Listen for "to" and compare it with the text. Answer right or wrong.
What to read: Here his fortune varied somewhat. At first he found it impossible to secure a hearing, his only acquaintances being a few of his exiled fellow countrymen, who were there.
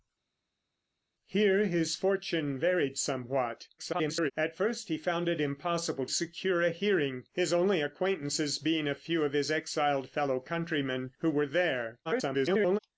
wrong